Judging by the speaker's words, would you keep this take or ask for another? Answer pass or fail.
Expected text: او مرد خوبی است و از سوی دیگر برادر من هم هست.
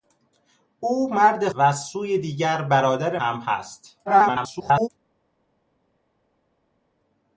fail